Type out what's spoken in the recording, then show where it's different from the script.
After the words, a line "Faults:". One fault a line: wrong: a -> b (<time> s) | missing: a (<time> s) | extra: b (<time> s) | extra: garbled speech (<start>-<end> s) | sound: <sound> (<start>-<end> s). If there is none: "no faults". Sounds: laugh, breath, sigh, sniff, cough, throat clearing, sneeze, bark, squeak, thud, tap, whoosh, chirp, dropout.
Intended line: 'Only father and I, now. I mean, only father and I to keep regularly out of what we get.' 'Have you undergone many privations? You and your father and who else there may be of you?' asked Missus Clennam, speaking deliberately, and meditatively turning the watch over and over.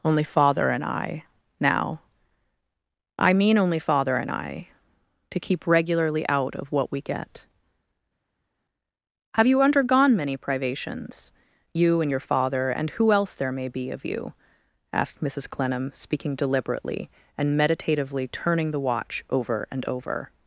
'Only father and I, now. I mean, only father and I to keep regularly out of what we get.' 'Have you undergone many privations? You and your father and who else there may be of you?' asked Missus Clennam, speaking deliberately, and meditatively turning the watch over and over.
Faults:
no faults